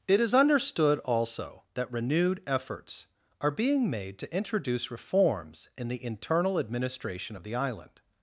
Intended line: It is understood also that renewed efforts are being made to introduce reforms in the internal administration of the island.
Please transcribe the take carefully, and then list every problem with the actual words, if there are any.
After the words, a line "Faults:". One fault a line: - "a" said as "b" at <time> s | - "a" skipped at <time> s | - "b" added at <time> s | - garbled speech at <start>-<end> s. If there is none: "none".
It is understood also that renewed efforts are being made to introduce reforms in the internal administration of the island.
Faults:
none